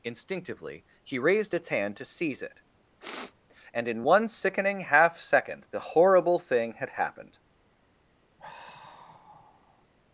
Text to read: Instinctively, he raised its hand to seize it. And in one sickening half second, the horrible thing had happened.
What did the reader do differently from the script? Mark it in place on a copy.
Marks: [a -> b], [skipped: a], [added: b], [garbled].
Instinctively, he raised its hand to seize it. And in one sickening half second, the horrible thing had happened.